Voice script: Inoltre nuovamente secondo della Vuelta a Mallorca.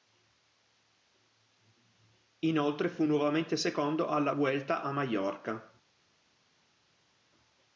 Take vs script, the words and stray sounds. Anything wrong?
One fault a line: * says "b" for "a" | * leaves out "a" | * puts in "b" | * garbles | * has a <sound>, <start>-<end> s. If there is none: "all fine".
* puts in "fu"
* says "alla" for "della"